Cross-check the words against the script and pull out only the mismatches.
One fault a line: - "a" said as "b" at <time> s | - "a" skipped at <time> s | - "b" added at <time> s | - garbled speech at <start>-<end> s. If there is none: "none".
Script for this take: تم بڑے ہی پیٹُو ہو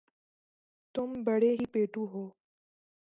none